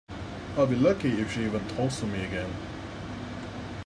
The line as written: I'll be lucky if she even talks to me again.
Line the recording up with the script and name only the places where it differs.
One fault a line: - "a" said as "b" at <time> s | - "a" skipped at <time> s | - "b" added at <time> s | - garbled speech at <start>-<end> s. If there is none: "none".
none